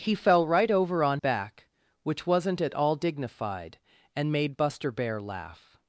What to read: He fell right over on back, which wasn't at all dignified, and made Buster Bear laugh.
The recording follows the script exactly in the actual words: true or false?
true